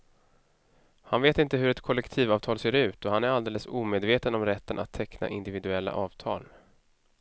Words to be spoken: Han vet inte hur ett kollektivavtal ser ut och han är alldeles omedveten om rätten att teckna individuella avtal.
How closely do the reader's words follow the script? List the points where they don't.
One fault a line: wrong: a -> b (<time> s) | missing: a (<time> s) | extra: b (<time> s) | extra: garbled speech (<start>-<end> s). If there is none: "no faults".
no faults